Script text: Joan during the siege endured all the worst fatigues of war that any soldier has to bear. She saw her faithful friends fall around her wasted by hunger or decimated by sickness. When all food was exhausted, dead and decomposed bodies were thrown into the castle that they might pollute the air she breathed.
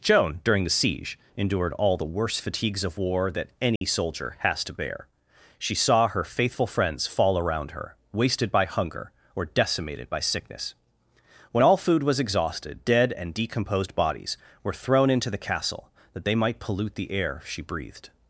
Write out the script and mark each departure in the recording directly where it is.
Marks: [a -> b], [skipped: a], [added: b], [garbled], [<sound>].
Joan during the siege endured all the worst fatigues of war that any [dropout] soldier has to bear. She saw her faithful friends fall around her wasted by hunger or decimated by sickness. When all food was exhausted, dead and decomposed bodies were thrown into the castle that they might pollute the air she breathed.